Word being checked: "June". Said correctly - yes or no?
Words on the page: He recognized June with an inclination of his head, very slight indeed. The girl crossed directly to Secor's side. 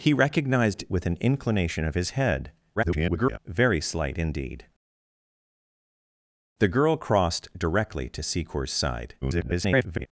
no